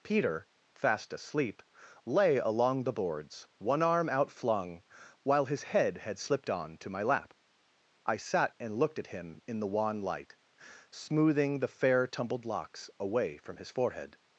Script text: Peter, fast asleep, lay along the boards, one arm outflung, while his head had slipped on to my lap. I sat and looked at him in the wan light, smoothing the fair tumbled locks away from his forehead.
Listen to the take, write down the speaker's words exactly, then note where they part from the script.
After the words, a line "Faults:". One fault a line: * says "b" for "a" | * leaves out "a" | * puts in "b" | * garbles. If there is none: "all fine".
Peter, fast asleep, lay along the boards, one arm outflung, while his head had slipped on to my lap. I sat and looked at him in the wan light, smoothing the fair tumbled locks away from his forehead.
Faults:
all fine